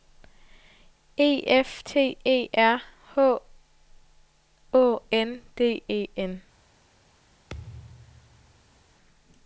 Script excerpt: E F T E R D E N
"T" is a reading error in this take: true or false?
false